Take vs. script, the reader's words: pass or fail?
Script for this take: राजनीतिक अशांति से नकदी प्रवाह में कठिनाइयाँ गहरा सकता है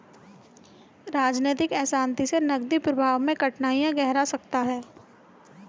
pass